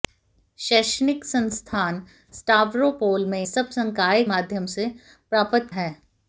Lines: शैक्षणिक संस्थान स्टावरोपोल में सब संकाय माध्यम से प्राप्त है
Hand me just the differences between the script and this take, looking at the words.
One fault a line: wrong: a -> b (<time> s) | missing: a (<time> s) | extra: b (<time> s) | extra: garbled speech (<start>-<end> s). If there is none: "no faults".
no faults